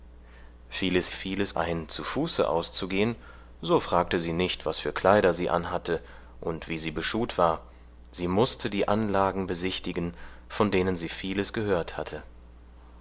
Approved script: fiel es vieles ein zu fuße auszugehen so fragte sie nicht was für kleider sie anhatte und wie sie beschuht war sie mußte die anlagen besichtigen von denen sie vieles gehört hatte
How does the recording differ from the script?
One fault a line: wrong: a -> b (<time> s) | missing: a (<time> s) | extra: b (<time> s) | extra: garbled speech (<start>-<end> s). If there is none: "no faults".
no faults